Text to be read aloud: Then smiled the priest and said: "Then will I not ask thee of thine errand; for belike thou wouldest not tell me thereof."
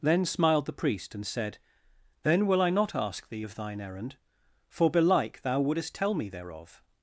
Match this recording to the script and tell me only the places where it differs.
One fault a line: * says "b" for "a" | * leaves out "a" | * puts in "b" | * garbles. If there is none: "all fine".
* leaves out "not"